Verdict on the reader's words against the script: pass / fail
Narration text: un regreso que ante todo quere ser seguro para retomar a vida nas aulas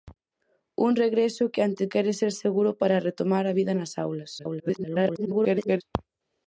fail